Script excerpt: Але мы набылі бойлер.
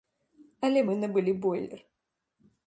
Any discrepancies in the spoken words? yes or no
no